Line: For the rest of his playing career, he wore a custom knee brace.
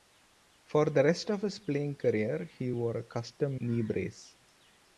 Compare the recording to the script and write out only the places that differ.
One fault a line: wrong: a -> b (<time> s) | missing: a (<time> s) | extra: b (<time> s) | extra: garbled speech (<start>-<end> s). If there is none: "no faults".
no faults